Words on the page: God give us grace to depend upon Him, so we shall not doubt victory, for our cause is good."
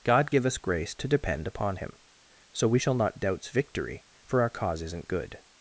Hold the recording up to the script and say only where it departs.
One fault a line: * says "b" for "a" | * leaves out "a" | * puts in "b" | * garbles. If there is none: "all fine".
* says "doubts" for "doubt"
* says "isn't" for "is"